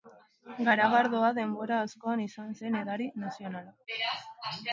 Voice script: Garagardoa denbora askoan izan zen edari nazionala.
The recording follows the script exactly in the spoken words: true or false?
true